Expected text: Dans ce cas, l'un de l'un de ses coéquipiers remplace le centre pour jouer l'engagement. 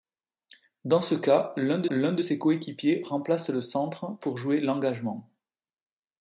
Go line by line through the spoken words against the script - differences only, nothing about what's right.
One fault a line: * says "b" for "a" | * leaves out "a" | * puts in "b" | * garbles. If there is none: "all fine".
all fine